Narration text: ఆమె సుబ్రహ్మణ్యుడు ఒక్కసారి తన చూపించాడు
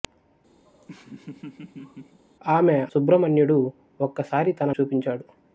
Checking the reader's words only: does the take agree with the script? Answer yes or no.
yes